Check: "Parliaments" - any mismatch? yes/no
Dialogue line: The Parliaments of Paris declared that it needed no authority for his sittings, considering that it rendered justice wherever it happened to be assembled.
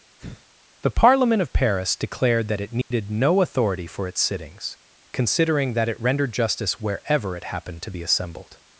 yes